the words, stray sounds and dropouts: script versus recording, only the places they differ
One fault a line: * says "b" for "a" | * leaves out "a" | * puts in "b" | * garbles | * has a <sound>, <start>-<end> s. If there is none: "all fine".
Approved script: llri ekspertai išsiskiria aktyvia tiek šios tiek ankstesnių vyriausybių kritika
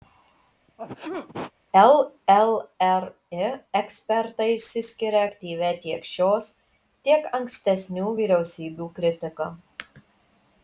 * has a sneeze, 0.7-1.5 s